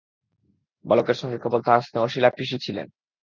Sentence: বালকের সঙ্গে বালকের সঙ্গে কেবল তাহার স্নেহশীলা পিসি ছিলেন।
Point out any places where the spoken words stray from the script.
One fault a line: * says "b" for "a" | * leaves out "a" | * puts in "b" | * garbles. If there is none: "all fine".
* leaves out "বালকের সঙ্গে"